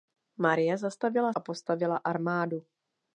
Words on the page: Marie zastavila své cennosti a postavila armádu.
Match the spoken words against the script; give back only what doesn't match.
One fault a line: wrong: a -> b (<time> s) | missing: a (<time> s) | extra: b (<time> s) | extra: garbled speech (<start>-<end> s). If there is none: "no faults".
missing: své cennosti (1.3 s)